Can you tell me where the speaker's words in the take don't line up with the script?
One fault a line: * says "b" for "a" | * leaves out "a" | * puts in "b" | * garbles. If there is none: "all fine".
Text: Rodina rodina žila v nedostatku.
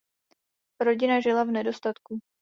* leaves out "rodina"